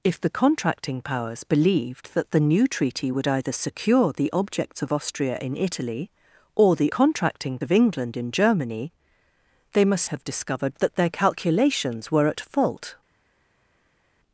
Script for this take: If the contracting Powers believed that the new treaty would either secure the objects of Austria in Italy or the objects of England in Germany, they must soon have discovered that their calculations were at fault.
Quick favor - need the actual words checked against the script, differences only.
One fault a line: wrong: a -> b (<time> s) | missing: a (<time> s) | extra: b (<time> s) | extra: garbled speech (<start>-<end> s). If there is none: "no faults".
wrong: objects -> contracting (6.9 s)
missing: soon (10.0 s)